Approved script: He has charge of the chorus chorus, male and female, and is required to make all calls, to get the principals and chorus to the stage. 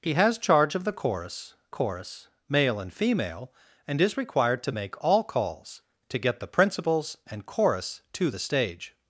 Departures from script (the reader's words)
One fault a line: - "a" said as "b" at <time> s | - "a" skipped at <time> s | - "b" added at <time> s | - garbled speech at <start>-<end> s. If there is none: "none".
none